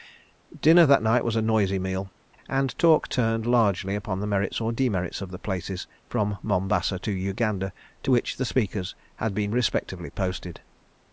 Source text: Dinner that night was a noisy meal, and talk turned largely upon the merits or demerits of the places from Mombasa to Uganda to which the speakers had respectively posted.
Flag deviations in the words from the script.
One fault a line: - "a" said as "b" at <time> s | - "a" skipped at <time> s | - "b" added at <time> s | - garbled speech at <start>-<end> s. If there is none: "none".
- "been" added at 9.3 s